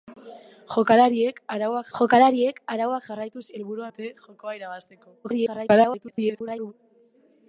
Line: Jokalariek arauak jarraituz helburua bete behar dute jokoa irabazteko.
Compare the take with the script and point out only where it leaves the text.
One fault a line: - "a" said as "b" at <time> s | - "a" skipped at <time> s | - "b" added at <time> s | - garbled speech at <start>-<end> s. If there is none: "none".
- "jokalariek arauak" added at 2.0 s
- "bete behar" skipped at 3.9 s
- garbled speech at 5.2-6.7 s